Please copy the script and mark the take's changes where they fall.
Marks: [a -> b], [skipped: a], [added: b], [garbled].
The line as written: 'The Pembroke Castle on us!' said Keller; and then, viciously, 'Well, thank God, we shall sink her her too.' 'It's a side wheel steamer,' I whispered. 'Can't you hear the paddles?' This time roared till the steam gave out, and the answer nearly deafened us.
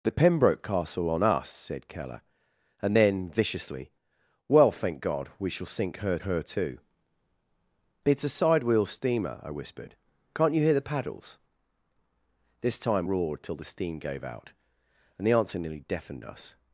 'The Pembroke Castle on us!' said Keller; and then, viciously, 'Well, thank God, we shall sink her her too.' 'It's a side wheel steamer,' I whispered. 'Can't you hear the paddles?' This time roared till the steam gave out, and the answer nearly deafened us.